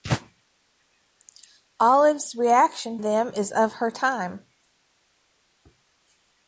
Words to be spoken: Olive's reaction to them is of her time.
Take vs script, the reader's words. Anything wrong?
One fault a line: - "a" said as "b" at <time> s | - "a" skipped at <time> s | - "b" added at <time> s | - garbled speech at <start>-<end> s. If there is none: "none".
- "to" skipped at 3.0 s